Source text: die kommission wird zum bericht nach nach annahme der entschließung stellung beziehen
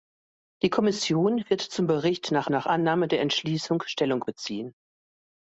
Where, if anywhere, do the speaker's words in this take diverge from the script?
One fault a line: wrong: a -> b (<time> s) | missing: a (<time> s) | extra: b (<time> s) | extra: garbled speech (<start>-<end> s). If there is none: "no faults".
no faults